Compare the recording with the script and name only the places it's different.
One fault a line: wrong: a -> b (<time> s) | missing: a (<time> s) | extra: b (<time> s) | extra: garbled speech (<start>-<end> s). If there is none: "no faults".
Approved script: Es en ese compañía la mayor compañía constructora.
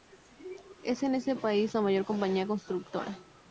wrong: compañía -> país (1.4 s)